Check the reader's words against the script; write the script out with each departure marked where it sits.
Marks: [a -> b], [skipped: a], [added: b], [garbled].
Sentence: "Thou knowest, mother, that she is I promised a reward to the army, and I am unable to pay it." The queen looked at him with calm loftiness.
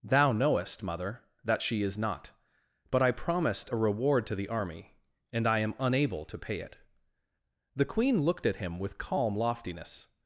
"Thou knowest, mother, that she is [added: not But] I promised a reward to the army, and I am unable to pay it." The queen looked at him with calm loftiness.